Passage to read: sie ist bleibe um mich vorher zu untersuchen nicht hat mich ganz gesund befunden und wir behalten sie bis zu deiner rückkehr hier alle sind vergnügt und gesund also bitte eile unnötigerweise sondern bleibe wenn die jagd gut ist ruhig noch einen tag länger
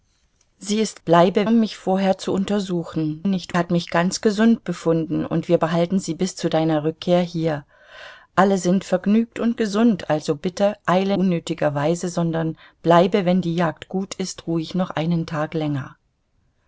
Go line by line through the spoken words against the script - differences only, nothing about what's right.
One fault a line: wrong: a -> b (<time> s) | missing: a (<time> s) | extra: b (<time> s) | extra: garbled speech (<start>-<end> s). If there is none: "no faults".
no faults